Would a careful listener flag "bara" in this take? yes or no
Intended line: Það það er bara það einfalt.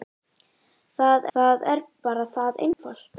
no